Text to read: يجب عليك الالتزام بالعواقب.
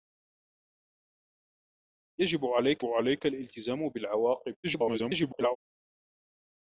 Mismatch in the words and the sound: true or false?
true